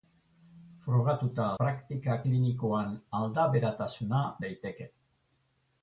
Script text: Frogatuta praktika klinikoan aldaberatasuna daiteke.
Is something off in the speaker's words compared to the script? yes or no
no